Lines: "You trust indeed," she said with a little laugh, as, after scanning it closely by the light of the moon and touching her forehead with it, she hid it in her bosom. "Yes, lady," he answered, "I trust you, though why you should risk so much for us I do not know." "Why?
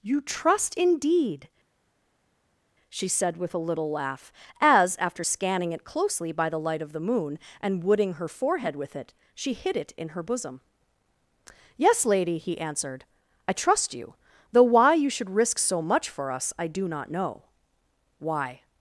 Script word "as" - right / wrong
right